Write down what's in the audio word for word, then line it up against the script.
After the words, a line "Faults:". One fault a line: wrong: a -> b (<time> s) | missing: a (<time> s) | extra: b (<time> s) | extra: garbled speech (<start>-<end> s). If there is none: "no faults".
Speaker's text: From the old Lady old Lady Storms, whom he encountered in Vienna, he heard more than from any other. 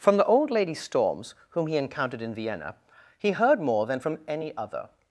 From the old Lady Storms, whom he encountered in Vienna, he heard more than from any other.
Faults:
missing: old Lady (0.7 s)